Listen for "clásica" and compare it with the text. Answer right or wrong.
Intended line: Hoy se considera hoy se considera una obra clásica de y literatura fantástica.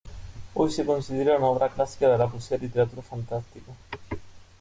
right